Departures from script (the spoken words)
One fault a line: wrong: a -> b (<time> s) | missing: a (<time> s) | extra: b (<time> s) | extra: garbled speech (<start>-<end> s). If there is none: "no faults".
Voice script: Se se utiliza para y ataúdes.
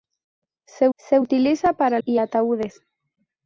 no faults